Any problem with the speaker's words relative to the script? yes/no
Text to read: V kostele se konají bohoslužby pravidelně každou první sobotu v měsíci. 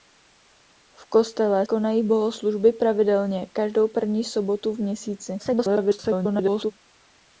yes